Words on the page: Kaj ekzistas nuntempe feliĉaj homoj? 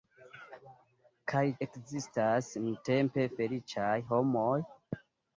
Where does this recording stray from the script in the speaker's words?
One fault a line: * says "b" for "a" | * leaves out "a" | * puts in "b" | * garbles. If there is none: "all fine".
all fine